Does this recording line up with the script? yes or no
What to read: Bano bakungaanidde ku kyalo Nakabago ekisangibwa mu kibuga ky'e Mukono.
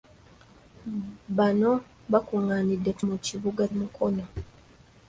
no